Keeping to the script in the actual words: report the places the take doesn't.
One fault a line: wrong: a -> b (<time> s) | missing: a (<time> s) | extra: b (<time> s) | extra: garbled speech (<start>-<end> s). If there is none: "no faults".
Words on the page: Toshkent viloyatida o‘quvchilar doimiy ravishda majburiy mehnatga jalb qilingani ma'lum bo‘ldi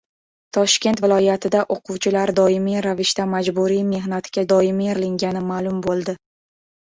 wrong: jalb -> doimiy (4.5 s)